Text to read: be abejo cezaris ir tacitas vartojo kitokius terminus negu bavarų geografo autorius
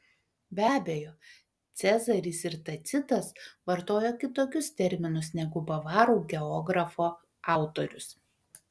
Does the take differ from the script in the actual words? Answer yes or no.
no